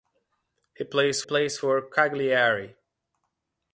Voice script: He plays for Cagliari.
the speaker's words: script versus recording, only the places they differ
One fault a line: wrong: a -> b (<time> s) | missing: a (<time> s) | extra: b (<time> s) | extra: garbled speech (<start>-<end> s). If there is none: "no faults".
extra: plays (1.2 s)